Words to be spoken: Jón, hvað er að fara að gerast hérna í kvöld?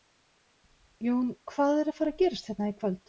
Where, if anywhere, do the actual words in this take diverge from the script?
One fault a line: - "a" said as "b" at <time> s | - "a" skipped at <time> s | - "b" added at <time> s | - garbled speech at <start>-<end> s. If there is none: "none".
none